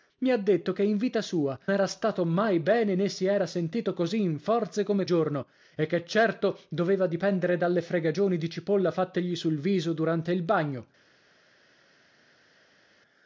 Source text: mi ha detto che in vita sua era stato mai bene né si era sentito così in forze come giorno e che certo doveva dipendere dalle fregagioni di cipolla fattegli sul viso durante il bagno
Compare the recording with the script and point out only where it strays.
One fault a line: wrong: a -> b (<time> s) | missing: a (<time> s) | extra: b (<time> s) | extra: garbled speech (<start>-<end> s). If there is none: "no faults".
no faults